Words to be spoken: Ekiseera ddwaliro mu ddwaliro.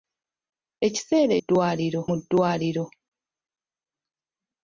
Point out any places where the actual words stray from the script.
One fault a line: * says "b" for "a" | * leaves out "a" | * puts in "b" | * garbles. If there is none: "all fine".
all fine